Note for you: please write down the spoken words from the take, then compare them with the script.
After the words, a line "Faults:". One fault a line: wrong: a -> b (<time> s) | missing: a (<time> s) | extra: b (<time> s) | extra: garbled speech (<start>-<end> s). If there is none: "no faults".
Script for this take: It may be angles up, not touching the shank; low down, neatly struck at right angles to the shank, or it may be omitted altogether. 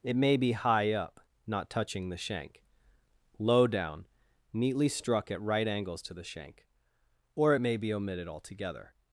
It may be high up, not touching the shank; low down, neatly struck at right angles to the shank, or it may be omitted altogether.
Faults:
wrong: angles -> high (0.5 s)